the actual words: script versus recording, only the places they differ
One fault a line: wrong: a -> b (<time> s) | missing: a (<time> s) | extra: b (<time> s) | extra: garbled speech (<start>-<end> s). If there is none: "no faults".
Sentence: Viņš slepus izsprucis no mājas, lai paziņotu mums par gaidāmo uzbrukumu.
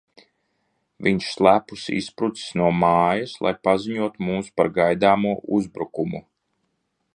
no faults